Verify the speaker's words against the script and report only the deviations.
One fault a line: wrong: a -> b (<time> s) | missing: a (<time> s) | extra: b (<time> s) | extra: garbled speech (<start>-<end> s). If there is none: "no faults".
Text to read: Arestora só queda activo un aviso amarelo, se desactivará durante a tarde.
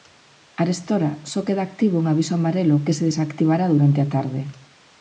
extra: que (2.9 s)